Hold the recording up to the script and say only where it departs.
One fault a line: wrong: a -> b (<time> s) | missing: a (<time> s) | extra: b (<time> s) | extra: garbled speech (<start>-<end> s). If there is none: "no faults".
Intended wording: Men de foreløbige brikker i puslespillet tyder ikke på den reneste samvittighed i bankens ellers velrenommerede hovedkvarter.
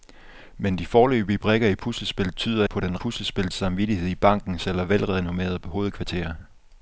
missing: ikke (2.6 s)
wrong: reneste -> puslespillet (2.9 s)